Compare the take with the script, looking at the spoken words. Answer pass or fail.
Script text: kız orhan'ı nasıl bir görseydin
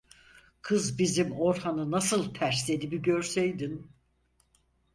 fail